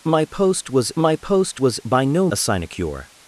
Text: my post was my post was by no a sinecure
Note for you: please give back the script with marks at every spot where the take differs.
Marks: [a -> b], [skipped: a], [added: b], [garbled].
my post was my post was by no a sinecure